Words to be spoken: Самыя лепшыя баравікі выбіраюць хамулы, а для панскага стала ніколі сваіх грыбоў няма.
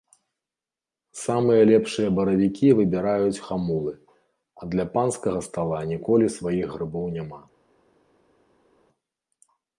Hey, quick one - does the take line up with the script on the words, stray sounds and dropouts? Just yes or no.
yes